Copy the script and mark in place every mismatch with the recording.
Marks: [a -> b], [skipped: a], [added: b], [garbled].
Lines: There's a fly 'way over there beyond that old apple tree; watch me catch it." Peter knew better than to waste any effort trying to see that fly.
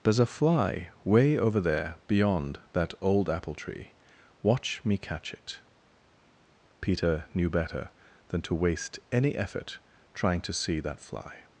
There's a fly 'way over there beyond that old apple tree; watch me catch it." Peter knew better than to waste any effort trying to see that fly.